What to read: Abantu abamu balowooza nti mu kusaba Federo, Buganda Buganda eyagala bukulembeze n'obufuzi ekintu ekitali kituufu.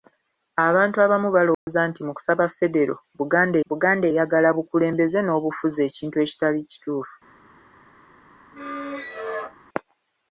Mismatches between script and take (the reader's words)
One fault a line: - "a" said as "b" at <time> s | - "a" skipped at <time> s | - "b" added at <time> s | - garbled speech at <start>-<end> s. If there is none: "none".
none